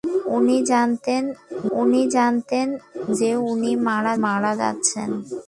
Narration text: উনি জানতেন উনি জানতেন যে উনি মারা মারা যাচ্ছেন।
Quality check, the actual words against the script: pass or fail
pass